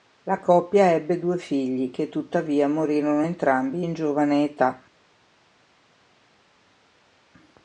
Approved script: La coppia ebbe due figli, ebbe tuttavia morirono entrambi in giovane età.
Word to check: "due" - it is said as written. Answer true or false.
true